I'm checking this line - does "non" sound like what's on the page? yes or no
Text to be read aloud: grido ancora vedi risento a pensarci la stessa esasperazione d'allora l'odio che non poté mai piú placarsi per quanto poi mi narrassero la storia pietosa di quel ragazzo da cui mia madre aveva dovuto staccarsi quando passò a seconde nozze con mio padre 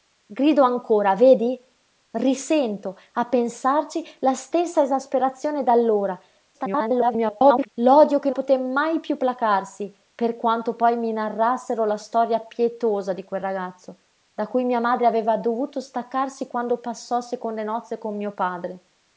no